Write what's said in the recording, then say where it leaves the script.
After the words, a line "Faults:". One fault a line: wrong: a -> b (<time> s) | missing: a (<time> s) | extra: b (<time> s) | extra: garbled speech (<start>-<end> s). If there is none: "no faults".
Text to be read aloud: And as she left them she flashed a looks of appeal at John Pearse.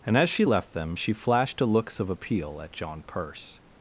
And as she left them she flashed a looks of appeal at John Pearse.
Faults:
no faults